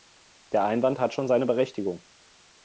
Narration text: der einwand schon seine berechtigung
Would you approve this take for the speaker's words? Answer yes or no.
no